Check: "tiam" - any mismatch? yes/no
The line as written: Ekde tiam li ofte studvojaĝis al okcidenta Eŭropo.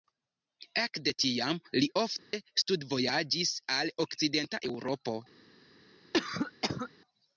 no